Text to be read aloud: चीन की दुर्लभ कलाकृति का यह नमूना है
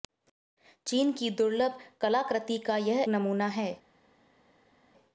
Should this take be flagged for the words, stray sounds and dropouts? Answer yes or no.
no